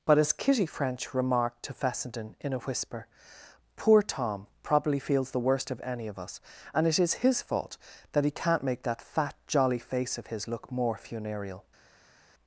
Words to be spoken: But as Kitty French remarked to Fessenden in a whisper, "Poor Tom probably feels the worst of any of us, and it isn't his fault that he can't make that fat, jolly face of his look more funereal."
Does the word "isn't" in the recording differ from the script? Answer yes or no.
yes